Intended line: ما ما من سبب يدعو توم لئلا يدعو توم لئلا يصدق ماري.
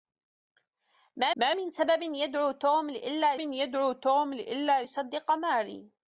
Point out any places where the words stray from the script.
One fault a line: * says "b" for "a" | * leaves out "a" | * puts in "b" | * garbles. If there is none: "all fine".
all fine